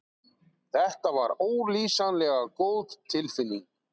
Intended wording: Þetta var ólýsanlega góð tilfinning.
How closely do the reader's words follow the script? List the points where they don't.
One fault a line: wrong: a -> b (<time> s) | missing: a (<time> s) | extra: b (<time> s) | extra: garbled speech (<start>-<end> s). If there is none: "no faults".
no faults